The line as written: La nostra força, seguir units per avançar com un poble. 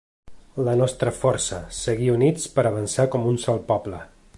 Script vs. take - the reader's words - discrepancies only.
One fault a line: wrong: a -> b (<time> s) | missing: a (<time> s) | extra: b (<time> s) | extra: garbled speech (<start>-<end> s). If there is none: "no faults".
extra: sol (3.5 s)